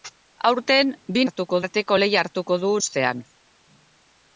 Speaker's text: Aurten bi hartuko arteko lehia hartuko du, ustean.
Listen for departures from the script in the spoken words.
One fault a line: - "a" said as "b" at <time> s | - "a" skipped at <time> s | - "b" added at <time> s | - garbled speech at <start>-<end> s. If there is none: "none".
none